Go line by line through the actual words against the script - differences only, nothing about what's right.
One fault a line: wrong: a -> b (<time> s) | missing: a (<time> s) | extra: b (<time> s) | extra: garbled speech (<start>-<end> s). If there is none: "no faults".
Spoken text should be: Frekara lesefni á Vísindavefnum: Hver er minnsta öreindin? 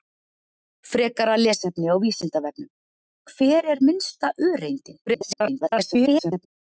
extra: garbled speech (5.1-6.5 s)